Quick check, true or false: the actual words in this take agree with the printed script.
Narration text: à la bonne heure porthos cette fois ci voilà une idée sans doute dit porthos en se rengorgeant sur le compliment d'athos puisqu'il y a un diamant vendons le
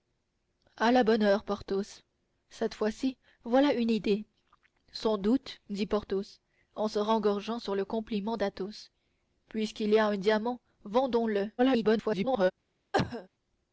false